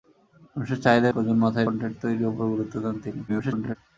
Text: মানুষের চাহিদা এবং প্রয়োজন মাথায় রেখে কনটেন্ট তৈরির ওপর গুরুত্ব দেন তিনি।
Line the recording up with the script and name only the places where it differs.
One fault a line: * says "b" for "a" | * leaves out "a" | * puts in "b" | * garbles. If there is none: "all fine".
* leaves out "এবং"
* leaves out "রেখে"
* garbles